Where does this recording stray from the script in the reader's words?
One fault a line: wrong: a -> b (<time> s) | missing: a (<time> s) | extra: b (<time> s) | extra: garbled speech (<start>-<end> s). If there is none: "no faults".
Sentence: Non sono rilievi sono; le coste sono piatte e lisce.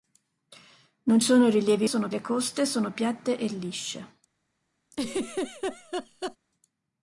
no faults